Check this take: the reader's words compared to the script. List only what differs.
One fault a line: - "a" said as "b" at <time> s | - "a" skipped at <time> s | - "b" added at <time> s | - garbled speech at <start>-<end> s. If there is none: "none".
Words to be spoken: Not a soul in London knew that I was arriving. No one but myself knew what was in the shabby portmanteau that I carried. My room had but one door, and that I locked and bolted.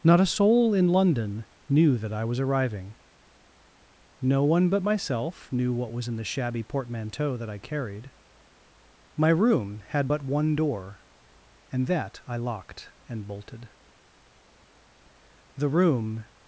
- "The room" added at 15.6 s